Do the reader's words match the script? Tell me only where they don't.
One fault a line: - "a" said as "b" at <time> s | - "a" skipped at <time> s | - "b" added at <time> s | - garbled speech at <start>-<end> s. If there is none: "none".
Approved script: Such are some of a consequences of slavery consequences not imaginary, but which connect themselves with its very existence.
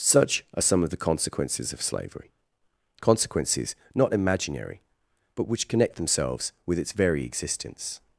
- "a" said as "the" at 0.9 s